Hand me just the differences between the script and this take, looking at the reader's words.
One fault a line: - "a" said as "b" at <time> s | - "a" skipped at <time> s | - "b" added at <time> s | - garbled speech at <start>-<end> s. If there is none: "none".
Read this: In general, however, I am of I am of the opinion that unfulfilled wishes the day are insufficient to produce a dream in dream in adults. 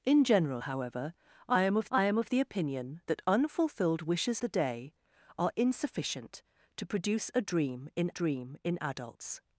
none